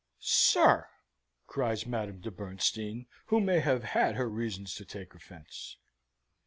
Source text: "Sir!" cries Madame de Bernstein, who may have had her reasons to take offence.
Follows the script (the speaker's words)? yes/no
yes